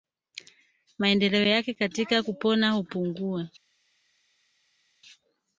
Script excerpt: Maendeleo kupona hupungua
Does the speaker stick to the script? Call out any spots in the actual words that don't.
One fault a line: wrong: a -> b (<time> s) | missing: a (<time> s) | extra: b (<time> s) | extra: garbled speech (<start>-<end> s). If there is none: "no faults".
extra: yake katika (1.4 s)